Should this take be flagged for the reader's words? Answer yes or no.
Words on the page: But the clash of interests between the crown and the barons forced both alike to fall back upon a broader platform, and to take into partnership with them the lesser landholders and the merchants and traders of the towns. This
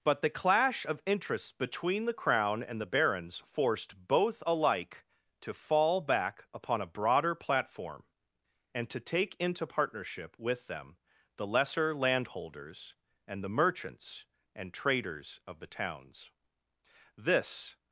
no